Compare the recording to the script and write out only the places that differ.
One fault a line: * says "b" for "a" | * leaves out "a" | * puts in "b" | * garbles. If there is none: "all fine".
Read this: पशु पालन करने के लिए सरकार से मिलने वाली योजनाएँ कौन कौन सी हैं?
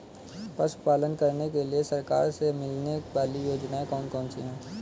all fine